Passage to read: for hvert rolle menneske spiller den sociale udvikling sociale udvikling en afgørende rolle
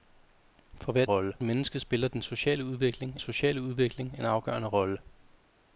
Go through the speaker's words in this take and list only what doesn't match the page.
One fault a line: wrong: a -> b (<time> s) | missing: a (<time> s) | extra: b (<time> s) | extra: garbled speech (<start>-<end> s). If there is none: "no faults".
no faults